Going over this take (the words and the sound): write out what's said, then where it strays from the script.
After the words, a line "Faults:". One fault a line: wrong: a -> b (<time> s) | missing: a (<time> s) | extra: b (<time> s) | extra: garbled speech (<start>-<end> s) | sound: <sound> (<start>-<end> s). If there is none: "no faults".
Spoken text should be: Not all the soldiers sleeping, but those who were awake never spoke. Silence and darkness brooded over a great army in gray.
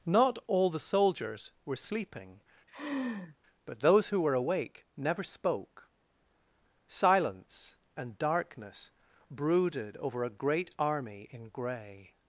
Not all the soldiers were sleeping, but those who were awake never spoke. Silence and darkness brooded over a great army in gray.
Faults:
extra: were (1.6 s)
sound: laugh (2.7-3.4 s)